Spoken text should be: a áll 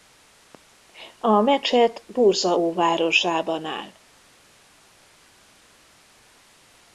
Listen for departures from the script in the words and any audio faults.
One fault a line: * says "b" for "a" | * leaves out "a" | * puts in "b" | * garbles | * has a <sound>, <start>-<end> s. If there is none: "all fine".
* puts in "mecset bursa óvárosában"